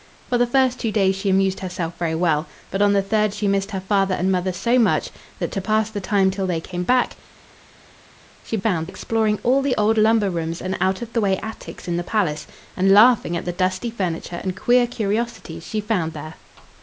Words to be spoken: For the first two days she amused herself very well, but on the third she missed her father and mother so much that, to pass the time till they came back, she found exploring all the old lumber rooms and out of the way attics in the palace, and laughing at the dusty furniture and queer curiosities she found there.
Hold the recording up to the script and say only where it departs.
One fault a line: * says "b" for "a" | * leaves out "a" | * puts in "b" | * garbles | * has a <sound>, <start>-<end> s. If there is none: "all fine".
all fine